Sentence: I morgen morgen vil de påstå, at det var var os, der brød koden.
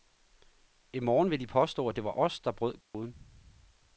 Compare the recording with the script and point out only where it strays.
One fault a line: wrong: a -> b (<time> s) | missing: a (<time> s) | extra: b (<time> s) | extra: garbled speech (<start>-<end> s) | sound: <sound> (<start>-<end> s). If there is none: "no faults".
missing: morgen (1.3 s)
missing: var (2.2 s)
sound: dropout (2.8-2.9 s)